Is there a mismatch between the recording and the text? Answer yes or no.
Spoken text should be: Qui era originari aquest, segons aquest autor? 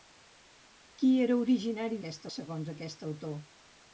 no